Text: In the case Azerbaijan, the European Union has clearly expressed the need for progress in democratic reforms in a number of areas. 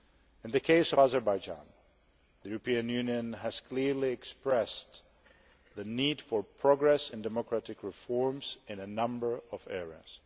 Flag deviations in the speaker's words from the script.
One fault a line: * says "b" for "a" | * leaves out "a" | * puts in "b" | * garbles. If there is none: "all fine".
all fine